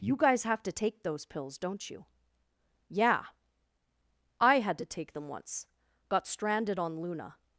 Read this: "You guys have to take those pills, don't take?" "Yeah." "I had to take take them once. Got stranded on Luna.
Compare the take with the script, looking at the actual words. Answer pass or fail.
fail